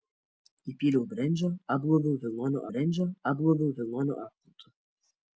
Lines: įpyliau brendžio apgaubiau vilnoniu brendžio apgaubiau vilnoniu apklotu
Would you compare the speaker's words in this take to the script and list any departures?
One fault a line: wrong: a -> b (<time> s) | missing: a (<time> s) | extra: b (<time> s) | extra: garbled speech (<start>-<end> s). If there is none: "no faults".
no faults